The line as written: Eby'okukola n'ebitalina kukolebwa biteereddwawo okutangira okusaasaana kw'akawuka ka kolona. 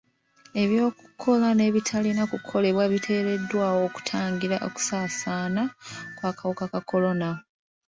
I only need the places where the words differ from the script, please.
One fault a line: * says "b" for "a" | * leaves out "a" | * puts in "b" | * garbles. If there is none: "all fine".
all fine